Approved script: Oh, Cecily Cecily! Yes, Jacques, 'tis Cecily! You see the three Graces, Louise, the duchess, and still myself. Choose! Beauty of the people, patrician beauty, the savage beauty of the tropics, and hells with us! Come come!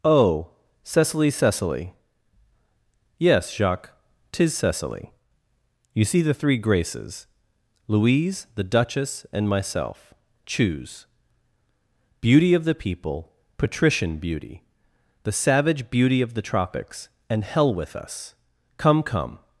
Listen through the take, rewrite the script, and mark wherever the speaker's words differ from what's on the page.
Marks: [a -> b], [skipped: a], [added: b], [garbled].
Oh, Cecily Cecily! Yes, Jacques, 'tis Cecily! You see the three Graces, Louise, the duchess, and [skipped: still] myself. Choose! Beauty of the people, patrician beauty, the savage beauty of the tropics, and [hells -> hell] with us! Come come!